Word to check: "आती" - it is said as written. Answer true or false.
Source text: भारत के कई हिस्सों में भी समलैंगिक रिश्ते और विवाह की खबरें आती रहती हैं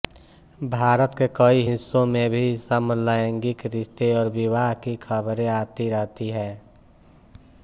true